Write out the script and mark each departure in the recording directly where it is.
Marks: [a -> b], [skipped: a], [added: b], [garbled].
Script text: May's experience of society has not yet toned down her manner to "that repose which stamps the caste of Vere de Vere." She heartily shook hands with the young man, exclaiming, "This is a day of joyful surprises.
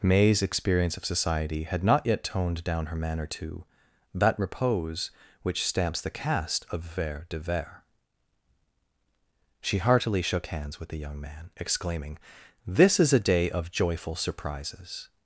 May's experience of society [has -> had] not yet toned down her manner to "that repose which stamps the caste of Vere de Vere." She heartily shook hands with the young man, exclaiming, "This is a day of joyful surprises.